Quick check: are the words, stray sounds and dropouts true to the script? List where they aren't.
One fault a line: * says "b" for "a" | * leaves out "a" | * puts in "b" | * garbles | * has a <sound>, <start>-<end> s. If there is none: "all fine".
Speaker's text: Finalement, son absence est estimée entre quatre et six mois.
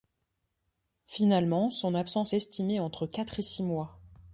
* leaves out "est"